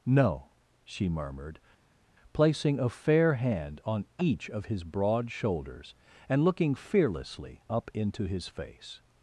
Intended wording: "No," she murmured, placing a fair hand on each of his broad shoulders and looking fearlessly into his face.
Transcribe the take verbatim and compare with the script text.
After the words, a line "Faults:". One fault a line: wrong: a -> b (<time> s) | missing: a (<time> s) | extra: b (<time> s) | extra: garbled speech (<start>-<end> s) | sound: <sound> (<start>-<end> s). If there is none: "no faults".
"No," she murmured, placing a fair hand on each of his broad shoulders and looking fearlessly up into his face.
Faults:
extra: up (7.7 s)